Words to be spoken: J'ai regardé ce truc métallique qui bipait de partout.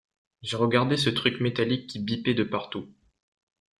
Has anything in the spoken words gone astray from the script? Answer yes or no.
no